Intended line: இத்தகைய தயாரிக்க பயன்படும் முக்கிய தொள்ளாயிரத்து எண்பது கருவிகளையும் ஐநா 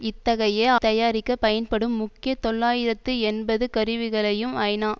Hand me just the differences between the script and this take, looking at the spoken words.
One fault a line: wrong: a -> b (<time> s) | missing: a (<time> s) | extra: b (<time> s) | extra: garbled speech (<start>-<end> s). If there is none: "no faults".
no faults